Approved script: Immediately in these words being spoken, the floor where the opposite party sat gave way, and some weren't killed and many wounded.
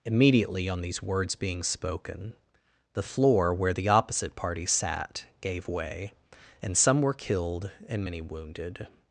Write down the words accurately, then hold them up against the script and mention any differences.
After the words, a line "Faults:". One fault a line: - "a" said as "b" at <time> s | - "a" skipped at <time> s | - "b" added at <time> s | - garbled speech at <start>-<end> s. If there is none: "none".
Immediately on these words being spoken, the floor where the opposite party sat gave way, and some were killed and many wounded.
Faults:
- "in" said as "on" at 0.7 s
- "weren't" said as "were" at 7.0 s